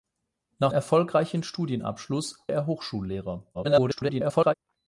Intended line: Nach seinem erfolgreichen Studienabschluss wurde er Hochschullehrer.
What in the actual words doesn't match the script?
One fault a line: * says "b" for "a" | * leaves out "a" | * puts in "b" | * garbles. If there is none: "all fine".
* leaves out "seinem"
* leaves out "wurde"
* garbles